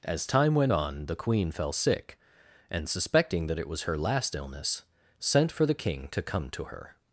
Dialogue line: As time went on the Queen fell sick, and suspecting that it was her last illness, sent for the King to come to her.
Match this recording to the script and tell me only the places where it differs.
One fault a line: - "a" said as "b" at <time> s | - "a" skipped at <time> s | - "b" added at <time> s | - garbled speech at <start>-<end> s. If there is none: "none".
none